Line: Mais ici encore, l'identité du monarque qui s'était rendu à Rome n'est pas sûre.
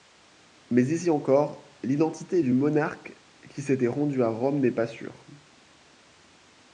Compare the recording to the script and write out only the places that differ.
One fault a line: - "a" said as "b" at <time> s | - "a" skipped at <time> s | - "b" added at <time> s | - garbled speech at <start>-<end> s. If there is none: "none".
none